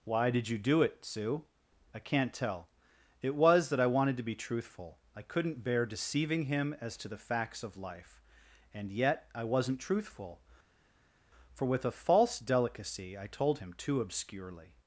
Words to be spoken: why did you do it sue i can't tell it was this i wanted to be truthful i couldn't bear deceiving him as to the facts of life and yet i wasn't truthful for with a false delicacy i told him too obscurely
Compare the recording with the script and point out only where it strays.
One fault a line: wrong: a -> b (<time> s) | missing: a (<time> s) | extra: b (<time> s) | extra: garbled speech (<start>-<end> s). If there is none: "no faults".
wrong: this -> that (3.7 s)